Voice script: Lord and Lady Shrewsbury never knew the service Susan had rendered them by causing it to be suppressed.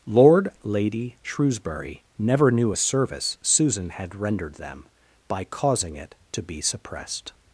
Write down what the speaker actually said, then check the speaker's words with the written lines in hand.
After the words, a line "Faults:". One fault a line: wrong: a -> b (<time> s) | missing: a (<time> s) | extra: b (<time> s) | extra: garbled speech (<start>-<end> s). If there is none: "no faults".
Lord Lady Shrewsbury never knew a service Susan had rendered them by causing it to be suppressed.
Faults:
missing: and (0.5 s)
wrong: the -> a (2.7 s)